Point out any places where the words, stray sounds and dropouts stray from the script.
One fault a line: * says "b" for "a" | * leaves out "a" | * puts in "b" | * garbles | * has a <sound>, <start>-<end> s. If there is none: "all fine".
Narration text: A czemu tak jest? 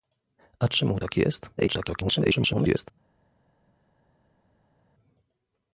* garbles